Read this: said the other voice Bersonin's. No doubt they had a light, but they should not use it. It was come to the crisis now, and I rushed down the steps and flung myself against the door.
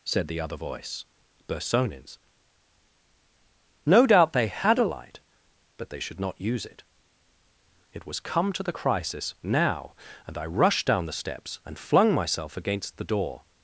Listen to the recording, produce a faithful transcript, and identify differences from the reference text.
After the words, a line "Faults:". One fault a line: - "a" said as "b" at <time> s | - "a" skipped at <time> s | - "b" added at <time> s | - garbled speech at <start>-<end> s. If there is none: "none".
said the other voice Bersonin's. No doubt they had a light, but they should not use it. It was come to the crisis now, and I rushed down the steps and flung myself against the door.
Faults:
none